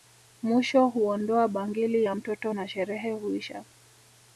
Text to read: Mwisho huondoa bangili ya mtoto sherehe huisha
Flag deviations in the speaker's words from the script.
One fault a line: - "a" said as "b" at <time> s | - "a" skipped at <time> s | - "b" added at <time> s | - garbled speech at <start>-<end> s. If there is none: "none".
- "na" added at 2.5 s